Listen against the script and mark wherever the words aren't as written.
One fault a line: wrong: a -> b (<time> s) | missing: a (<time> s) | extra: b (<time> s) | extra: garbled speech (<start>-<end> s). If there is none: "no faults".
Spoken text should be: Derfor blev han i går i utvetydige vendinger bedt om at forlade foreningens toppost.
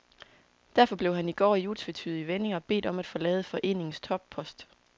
no faults